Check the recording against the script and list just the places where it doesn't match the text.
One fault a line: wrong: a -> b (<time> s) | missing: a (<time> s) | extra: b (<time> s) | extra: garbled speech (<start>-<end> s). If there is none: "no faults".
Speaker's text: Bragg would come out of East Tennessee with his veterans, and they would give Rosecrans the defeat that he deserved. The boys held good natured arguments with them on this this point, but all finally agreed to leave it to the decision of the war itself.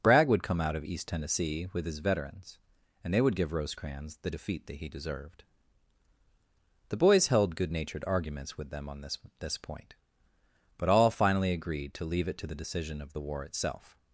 no faults